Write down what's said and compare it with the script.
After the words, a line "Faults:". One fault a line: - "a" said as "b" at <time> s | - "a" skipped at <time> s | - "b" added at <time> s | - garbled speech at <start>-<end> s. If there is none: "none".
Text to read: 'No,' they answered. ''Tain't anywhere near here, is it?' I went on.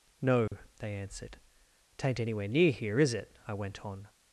'No,' they answered. ''Tain't anywhere near here, is it?' I went on.
Faults:
none